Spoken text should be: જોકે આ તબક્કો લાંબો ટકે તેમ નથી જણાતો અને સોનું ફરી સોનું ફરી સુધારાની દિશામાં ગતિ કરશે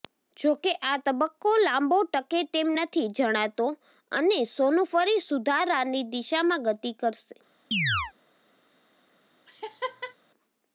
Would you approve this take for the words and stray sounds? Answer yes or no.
no